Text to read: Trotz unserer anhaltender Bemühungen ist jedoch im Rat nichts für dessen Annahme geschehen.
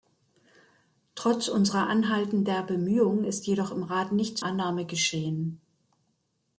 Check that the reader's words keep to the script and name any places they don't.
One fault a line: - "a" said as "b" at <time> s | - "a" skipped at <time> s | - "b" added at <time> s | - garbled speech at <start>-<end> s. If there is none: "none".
- "für dessen" skipped at 4.4 s